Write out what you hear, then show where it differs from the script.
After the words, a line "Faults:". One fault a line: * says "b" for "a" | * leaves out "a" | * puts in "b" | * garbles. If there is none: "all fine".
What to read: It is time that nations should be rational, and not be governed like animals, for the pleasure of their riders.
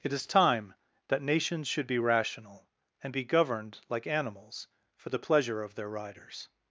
It is time that nations should be rational, and be governed like animals, for the pleasure of their riders.
Faults:
* leaves out "not"